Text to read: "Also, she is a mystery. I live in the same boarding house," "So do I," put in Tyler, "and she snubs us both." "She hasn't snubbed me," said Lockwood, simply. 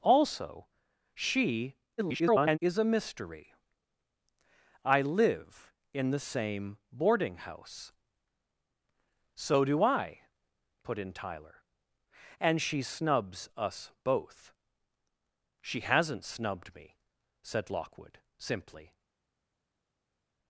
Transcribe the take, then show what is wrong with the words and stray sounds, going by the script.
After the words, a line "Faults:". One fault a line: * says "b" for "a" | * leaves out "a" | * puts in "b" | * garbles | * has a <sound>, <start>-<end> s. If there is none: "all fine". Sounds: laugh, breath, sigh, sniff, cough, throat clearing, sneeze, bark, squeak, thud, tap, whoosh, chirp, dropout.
"Also, she [garbled] is a mystery. I live in the same boarding house," "So do I," put in Tyler, "and she snubs us both." "She hasn't snubbed me," said Lockwood, simply.
Faults:
* garbles